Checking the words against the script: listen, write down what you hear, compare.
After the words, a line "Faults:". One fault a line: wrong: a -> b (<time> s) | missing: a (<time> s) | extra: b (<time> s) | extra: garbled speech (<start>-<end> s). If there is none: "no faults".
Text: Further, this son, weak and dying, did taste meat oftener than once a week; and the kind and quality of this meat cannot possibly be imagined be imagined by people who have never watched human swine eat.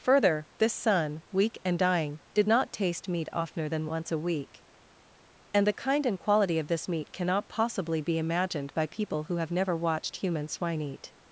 Further, this son, weak and dying, did not taste meat oftener than once a week; and the kind and quality of this meat cannot possibly be imagined by people who have never watched human swine eat.
Faults:
extra: not (2.5 s)
missing: be imagined (8.7 s)